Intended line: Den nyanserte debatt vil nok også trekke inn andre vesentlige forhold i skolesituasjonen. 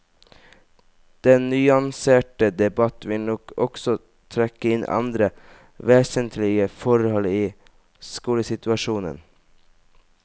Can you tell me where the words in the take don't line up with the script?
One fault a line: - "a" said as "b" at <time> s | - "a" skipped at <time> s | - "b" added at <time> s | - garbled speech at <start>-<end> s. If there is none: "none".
none